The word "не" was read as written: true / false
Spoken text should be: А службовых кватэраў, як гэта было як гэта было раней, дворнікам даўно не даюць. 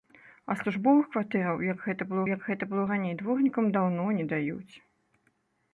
true